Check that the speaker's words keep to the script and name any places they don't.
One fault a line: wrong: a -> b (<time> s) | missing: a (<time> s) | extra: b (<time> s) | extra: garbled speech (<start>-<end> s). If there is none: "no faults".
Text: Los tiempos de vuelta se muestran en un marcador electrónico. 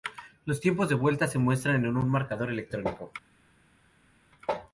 no faults